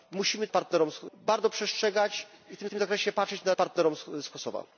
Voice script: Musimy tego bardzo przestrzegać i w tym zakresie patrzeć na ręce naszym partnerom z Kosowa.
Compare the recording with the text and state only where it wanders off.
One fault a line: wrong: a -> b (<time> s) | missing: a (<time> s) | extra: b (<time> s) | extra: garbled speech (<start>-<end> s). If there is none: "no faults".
wrong: tego -> partnerom (0.5 s)
extra: tym (2.7 s)
missing: ręce naszym (3.5 s)